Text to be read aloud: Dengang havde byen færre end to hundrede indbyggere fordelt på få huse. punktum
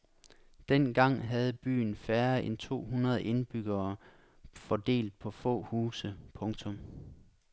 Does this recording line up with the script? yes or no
yes